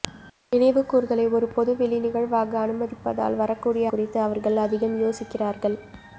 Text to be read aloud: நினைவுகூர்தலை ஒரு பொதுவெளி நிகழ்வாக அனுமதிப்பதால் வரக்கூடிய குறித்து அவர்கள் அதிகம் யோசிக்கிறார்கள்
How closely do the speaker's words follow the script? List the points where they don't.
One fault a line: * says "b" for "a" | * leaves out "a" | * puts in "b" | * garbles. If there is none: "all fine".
all fine